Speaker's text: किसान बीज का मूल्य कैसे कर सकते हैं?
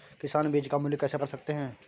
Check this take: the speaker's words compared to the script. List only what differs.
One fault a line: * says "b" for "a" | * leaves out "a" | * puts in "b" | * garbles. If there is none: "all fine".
all fine